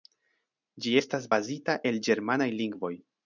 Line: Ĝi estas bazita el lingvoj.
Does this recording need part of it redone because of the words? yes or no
yes